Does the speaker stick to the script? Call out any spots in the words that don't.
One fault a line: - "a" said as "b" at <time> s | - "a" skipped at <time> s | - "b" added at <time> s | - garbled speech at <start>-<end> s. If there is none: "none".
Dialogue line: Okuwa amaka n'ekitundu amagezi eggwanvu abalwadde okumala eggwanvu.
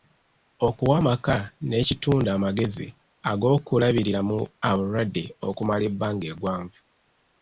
- "eggwanvu" said as "ag'okulabiriramu" at 3.3 s
- "ebbanga" added at 5.9 s